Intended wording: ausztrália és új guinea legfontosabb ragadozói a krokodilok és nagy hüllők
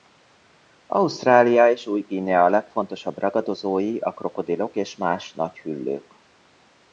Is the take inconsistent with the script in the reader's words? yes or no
yes